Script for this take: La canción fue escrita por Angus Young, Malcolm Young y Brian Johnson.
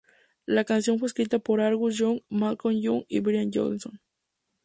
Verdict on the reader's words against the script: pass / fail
pass